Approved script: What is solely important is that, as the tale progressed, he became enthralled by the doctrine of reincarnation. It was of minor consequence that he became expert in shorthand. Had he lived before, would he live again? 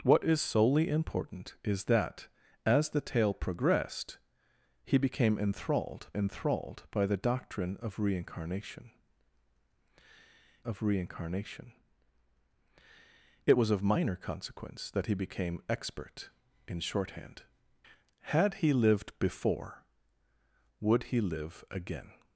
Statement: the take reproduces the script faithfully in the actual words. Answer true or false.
false